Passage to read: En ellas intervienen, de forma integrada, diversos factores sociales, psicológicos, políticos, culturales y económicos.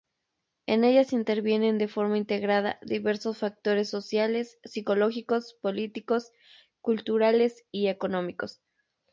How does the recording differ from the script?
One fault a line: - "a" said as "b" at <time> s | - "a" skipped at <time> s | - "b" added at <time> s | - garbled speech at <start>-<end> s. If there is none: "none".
none